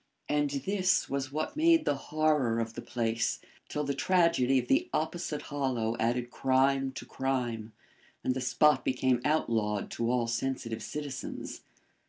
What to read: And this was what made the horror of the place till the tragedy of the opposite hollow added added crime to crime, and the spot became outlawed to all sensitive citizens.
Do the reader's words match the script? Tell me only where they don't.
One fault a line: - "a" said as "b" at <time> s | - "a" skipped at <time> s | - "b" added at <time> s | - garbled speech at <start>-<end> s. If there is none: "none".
- "added" skipped at 6.3 s